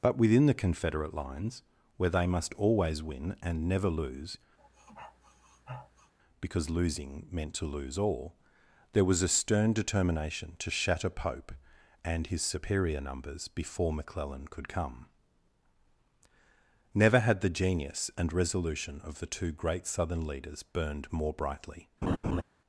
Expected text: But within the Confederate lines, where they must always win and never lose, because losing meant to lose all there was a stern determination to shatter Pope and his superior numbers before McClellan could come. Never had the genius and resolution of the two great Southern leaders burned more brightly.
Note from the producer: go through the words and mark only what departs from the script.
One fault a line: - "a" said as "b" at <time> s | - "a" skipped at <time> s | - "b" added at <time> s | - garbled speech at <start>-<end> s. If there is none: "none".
none